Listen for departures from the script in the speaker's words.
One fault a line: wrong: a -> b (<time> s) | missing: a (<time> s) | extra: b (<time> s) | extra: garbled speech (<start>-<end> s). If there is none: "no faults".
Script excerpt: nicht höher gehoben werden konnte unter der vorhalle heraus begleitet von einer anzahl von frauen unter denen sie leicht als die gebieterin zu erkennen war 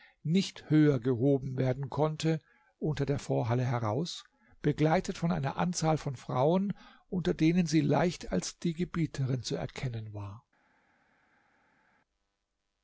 no faults